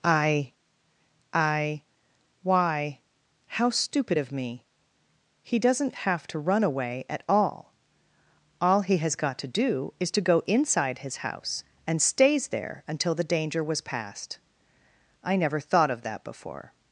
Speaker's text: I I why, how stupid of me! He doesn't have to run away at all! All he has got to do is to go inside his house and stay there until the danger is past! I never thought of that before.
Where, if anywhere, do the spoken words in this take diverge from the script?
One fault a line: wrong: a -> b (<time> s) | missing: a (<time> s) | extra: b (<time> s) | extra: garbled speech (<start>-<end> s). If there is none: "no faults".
wrong: stay -> stays (12.0 s)
wrong: is -> was (13.6 s)